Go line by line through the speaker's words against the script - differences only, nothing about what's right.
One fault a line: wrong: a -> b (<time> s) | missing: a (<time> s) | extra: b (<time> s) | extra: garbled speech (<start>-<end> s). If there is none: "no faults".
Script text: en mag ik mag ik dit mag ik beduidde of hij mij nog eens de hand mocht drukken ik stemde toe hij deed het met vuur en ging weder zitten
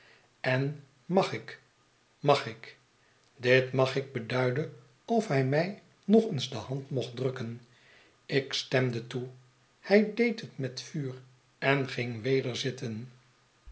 no faults